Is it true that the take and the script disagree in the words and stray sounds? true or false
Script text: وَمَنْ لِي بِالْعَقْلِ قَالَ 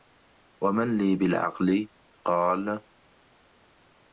false